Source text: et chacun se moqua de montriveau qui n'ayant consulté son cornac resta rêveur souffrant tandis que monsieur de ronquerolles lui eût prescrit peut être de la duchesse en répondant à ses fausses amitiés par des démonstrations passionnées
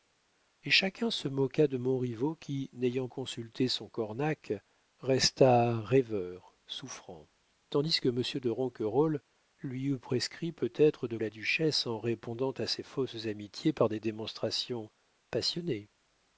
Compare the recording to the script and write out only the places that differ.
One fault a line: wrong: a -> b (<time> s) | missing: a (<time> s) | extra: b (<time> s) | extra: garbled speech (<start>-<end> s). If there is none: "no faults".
no faults